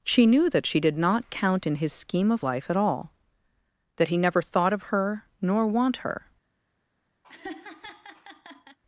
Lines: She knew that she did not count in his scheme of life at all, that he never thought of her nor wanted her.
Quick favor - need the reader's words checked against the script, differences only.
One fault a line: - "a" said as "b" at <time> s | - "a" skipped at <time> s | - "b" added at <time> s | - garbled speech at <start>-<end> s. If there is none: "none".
- "wanted" said as "want" at 5.7 s